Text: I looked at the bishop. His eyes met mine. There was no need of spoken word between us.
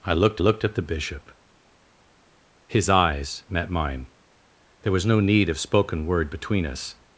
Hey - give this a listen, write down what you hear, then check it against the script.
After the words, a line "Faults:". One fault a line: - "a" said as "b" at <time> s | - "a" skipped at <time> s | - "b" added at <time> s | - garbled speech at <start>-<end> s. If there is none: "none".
I looked looked at the bishop. His eyes met mine. There was no need of spoken word between us.
Faults:
- "looked" added at 0.4 s